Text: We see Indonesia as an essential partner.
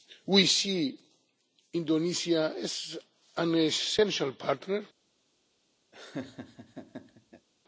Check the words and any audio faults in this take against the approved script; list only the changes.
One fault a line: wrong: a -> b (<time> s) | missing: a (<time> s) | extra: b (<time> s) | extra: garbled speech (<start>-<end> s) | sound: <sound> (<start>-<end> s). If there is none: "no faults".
sound: laugh (5.9-7.5 s)